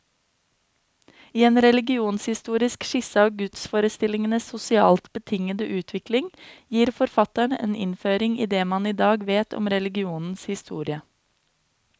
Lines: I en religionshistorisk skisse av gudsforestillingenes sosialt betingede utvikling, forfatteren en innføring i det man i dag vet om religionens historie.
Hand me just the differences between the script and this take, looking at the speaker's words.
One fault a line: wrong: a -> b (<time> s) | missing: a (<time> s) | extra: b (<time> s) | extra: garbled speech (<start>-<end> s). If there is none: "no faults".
extra: gir (6.8 s)